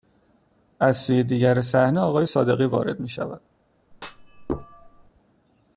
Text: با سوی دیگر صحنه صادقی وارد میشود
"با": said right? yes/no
no